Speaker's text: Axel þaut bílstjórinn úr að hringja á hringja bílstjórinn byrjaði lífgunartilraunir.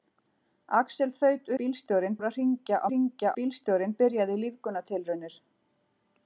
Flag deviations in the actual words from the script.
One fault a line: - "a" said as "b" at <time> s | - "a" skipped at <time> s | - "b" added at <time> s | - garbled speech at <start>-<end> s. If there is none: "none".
none